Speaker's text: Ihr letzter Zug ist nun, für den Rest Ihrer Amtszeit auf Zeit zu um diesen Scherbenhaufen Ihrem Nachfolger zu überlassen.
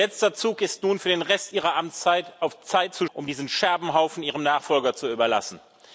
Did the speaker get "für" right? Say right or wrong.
right